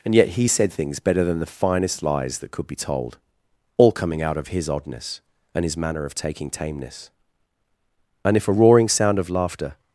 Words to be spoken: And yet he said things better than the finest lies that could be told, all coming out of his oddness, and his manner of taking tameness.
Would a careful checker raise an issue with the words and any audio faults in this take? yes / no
yes